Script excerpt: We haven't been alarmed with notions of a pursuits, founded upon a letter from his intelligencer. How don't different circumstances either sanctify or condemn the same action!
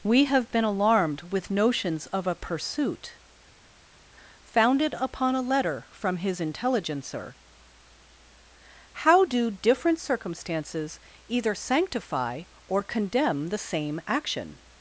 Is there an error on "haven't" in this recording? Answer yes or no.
yes